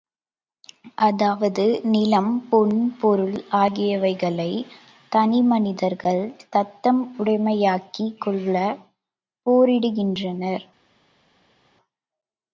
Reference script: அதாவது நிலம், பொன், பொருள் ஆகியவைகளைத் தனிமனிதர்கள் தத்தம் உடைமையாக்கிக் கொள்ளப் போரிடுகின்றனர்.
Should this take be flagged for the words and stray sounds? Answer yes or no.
no